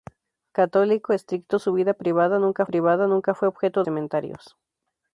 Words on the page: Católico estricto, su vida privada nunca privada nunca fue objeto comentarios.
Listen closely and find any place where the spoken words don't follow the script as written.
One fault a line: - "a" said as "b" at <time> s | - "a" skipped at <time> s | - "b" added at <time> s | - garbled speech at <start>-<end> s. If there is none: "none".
none